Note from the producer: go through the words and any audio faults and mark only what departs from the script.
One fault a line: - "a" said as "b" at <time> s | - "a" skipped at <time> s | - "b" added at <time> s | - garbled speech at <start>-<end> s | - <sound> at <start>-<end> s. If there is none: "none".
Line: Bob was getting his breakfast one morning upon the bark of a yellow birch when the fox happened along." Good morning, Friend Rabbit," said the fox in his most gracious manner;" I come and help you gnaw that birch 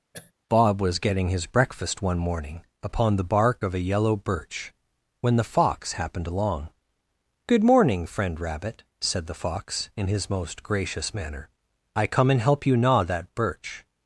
- throat clearing at 0.1-0.3 s